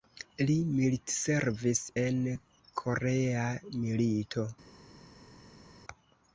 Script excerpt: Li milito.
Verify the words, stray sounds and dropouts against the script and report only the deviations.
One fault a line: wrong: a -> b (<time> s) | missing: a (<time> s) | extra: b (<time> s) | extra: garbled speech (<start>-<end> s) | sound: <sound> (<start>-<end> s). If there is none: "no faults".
extra: militservis en Korea (0.8 s)